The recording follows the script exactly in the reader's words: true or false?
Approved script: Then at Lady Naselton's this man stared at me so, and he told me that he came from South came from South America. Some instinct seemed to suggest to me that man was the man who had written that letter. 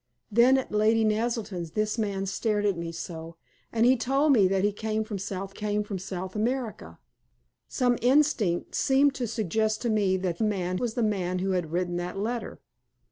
true